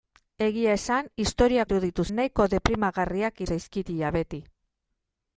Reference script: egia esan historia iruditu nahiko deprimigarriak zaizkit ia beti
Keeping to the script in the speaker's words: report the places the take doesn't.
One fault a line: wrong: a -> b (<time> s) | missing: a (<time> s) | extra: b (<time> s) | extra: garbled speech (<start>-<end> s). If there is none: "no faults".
no faults